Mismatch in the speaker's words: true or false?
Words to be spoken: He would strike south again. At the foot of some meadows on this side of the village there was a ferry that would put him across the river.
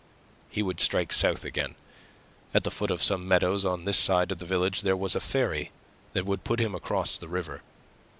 false